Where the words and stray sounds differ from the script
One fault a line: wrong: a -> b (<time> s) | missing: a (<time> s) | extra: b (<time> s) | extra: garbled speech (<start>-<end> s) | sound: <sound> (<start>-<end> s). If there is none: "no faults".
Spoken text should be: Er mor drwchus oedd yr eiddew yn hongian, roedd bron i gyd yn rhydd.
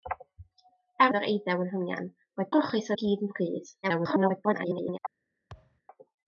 missing: mor drwchus (1.1 s)
wrong: bron -> drwchus (2.5 s)
extra: garbled speech (3.8-5.0 s)
sound: thud (5.5-5.8 s)